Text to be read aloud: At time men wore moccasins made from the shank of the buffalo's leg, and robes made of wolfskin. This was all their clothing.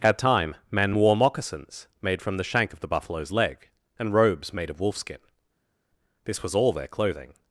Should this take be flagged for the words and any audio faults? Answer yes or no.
no